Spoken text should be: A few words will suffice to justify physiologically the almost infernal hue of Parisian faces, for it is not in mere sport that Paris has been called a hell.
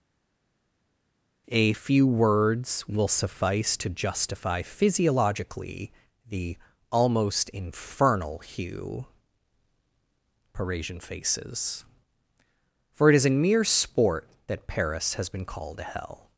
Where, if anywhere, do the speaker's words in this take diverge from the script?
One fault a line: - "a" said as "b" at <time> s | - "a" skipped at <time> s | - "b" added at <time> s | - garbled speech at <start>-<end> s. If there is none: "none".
- "of" skipped at 9.1 s
- "not" skipped at 13.2 s